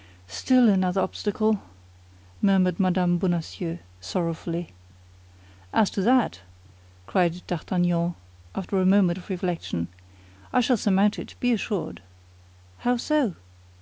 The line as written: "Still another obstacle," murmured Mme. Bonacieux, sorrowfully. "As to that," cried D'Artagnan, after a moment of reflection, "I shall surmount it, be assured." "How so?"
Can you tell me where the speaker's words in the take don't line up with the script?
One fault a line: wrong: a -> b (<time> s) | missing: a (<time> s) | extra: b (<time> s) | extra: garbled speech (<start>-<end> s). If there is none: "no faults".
no faults